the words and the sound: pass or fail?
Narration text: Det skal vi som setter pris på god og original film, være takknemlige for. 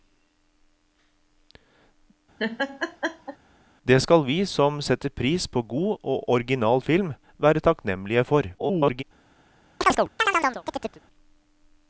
fail